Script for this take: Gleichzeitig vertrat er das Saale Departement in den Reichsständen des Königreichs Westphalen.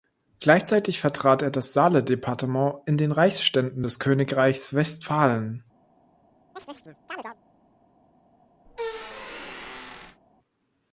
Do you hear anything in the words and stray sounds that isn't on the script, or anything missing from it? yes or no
yes